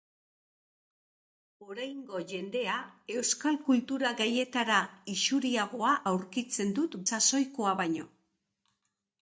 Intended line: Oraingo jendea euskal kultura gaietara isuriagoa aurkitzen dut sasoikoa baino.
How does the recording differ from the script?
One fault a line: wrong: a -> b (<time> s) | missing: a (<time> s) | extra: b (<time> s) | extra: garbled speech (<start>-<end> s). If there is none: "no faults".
no faults